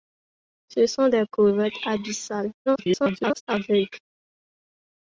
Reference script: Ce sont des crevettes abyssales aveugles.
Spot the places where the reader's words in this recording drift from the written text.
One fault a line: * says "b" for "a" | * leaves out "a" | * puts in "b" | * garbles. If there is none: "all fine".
* garbles